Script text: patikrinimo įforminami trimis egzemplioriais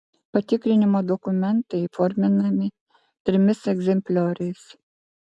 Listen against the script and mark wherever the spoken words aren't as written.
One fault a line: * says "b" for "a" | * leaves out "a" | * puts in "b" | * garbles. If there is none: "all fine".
* puts in "dokumentai"